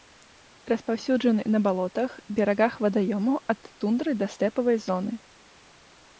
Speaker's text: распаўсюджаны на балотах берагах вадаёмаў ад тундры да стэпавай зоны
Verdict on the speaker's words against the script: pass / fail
pass